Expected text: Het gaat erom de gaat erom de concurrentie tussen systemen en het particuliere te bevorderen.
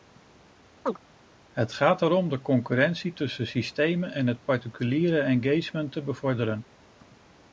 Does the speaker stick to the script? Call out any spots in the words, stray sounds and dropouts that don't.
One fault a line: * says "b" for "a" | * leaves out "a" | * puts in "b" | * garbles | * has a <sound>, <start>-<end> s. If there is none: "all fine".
* has a chirp, 0.9-1.0 s
* leaves out "gaat erom de"
* puts in "engagement"